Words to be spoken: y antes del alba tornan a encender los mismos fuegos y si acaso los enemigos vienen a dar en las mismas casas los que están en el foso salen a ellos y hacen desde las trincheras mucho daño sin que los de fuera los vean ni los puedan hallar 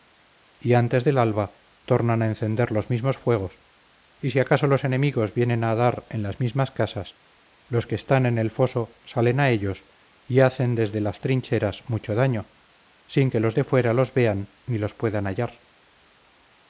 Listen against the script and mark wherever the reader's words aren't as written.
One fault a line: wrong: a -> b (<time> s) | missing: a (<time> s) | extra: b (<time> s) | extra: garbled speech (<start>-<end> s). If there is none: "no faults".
no faults